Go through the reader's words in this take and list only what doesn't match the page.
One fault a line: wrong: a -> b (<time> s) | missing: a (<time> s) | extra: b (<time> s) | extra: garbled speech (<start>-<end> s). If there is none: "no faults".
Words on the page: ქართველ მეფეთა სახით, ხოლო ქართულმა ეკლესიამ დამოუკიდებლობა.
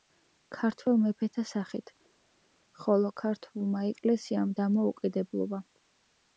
no faults